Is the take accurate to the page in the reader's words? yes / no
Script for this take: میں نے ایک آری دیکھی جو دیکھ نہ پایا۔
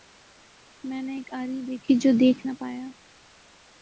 yes